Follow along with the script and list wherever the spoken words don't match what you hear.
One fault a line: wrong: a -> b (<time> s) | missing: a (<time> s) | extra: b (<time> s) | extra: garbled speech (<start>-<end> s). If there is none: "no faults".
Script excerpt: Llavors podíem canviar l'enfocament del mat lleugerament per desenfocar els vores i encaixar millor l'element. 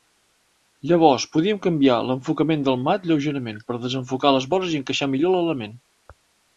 wrong: els -> les (4.4 s)